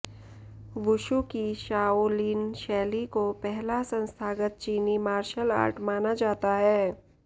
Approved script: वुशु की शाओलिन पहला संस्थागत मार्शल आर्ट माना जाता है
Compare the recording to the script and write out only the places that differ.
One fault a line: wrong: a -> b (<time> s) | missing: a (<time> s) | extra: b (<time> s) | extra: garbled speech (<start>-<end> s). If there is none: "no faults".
extra: शैली को (2.5 s)
extra: चीनी (4.6 s)